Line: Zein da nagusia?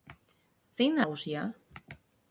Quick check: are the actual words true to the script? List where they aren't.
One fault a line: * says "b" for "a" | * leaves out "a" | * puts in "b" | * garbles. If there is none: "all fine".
all fine